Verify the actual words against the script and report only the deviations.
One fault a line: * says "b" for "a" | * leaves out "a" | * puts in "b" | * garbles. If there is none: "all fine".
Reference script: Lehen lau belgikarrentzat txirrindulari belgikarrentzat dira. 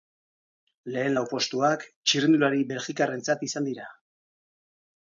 * says "postuak" for "belgikarrentzat"
* puts in "izan"